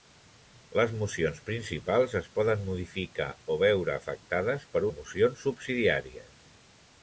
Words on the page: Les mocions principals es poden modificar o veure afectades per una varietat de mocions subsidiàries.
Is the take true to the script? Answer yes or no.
no